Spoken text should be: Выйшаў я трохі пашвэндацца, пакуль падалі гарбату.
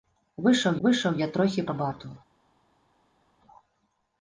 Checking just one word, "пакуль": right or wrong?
wrong